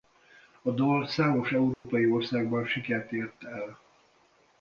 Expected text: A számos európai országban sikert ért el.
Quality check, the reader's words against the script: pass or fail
fail